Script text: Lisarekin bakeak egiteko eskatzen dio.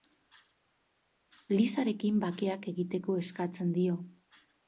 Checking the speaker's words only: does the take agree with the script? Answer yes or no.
yes